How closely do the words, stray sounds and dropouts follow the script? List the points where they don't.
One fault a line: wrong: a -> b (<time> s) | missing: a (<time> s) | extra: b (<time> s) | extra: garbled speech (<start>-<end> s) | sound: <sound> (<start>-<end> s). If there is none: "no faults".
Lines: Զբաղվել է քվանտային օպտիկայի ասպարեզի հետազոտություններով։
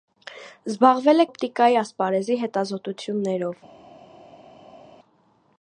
missing: քվանտային (1.2 s)